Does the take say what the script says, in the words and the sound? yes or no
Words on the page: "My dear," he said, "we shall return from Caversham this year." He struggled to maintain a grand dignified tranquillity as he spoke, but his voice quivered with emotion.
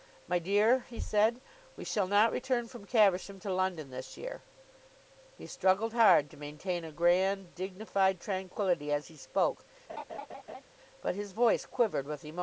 no